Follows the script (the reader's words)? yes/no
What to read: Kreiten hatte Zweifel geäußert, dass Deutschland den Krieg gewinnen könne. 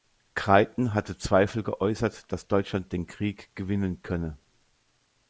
yes